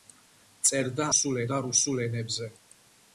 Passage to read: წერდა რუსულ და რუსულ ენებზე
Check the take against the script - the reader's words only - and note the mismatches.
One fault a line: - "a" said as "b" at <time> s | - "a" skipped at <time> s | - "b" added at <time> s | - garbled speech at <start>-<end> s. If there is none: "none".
none